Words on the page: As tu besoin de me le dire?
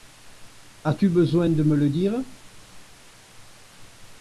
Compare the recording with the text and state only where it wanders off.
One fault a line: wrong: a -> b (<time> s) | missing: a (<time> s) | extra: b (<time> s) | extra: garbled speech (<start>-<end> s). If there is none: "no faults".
no faults